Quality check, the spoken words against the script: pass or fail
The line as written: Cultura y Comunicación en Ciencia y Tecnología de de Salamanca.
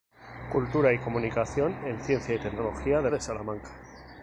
pass